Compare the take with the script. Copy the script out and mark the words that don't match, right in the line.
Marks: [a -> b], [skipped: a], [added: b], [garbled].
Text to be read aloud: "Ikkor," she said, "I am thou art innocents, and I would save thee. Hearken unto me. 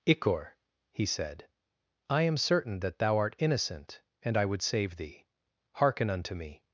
"Ikkor," [she -> he] said, "I am [added: certain that] thou art [innocents, -> innocent] and I would save thee. Hearken unto me.